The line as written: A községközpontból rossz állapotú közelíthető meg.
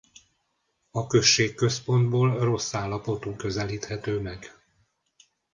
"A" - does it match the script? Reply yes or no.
yes